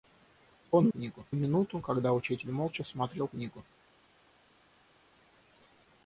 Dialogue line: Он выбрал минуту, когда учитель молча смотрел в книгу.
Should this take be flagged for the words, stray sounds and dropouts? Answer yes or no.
yes